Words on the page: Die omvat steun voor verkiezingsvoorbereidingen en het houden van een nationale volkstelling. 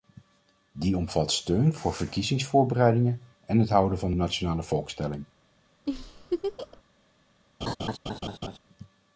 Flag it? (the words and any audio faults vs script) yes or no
yes